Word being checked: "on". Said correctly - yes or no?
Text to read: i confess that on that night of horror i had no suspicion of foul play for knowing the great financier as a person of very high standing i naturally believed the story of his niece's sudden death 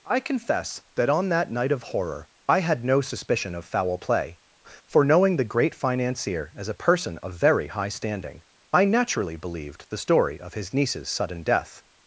yes